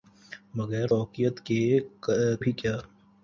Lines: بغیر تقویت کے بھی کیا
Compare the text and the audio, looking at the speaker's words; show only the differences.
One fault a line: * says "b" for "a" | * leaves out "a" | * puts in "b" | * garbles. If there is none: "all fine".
all fine